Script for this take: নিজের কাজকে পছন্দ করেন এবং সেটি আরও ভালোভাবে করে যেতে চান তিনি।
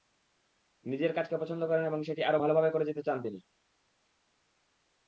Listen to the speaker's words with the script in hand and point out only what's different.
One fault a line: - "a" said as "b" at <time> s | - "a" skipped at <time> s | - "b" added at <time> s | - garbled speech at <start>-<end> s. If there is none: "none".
none